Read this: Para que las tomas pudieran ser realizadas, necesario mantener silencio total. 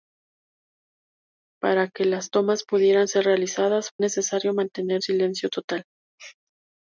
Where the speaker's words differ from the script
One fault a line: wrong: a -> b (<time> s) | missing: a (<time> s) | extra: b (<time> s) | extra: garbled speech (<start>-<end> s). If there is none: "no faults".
no faults